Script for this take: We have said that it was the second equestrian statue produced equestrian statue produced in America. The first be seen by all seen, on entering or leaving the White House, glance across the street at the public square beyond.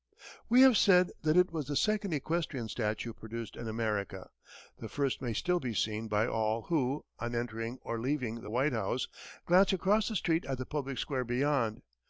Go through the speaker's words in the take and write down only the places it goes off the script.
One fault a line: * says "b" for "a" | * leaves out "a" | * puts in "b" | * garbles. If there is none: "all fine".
* leaves out "equestrian statue produced"
* puts in "may still"
* says "who" for "seen"